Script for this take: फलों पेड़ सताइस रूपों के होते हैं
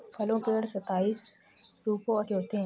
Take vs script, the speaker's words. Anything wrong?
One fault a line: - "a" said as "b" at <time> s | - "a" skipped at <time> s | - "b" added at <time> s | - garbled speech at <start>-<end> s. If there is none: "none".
none